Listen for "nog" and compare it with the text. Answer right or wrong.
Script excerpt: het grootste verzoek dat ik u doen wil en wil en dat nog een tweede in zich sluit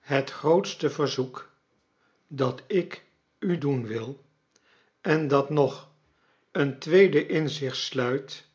right